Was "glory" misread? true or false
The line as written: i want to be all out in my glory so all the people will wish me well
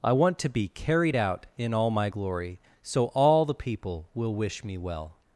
false